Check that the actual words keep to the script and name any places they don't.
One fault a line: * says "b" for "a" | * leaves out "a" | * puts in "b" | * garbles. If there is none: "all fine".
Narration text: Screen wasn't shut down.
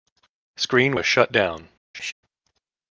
* says "was" for "wasn't"